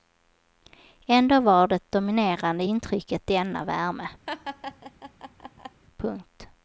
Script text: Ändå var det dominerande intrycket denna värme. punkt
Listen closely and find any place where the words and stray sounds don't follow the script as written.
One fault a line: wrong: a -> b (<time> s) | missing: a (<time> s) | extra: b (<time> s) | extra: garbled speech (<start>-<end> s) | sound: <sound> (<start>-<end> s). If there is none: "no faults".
sound: laugh (4.3-5.8 s)